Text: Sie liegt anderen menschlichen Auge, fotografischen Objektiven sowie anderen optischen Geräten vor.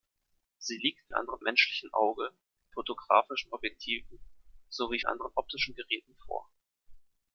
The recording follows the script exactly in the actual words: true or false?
true